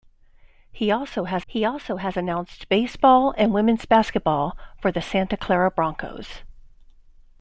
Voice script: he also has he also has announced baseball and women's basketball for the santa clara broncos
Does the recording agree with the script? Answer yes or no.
yes